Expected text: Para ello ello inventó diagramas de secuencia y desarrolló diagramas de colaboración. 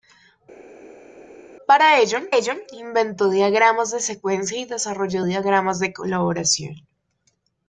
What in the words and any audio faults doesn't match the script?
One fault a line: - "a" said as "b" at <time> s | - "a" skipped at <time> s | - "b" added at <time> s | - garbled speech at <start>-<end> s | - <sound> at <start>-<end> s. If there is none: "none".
none